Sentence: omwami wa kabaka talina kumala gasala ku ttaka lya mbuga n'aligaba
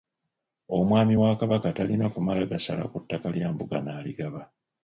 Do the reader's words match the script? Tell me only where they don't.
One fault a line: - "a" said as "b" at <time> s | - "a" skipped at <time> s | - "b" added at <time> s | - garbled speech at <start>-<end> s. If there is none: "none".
none